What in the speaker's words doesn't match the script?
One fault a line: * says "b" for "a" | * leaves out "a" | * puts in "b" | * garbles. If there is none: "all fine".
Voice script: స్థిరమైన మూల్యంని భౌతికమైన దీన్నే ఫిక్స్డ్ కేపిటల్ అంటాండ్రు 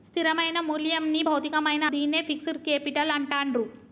all fine